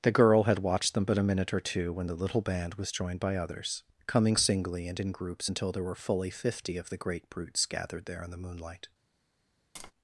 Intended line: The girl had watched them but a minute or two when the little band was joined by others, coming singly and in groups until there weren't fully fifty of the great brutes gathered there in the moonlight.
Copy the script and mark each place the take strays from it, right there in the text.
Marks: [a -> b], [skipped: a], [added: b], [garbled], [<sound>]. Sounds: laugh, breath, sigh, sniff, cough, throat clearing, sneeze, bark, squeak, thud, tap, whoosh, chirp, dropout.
The girl had watched them but a minute or two when the little band was joined by others, coming singly and in groups until there [weren't -> were] fully fifty of the great brutes gathered there in the moonlight. [tap]